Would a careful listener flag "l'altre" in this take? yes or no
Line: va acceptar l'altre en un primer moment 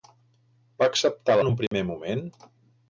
yes